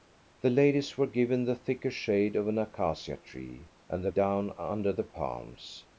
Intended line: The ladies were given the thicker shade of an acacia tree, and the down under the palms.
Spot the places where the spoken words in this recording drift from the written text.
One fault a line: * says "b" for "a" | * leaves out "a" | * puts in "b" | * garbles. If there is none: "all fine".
all fine